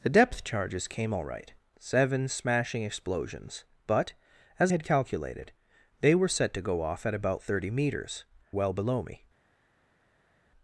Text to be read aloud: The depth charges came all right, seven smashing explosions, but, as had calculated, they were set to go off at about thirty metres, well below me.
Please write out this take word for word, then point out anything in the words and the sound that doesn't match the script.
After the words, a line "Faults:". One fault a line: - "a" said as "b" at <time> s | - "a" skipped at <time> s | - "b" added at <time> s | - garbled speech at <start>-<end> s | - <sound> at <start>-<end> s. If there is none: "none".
The depth charges came all right, seven smashing explosions, but, as had calculated, they were set to go off at about thirty metres, well below me.
Faults:
none